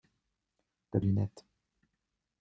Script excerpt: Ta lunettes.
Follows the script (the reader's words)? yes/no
yes